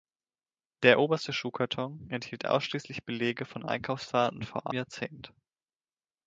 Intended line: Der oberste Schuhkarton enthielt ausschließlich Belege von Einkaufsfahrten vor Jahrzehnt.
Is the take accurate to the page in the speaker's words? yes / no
yes